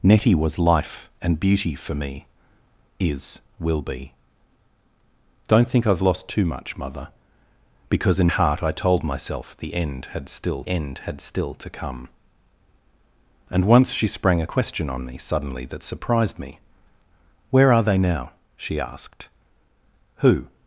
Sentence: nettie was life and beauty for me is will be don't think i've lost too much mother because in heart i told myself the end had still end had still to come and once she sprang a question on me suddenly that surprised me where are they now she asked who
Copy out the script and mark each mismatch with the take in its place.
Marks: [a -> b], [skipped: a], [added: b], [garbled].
nettie was life and beauty for me is will be don't think i've lost too much mother because in heart i told myself the end had still end had still to come and once she sprang a question on me suddenly that surprised me where are they now she asked who